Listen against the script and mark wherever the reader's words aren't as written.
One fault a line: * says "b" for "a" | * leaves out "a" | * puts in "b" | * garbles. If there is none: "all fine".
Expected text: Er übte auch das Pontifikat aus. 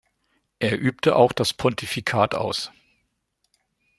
all fine